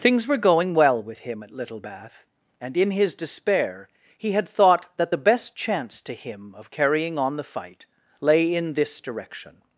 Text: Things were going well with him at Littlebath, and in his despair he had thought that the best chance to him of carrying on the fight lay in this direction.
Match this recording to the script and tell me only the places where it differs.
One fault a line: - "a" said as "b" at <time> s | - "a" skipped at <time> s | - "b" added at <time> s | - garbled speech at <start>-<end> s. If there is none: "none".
none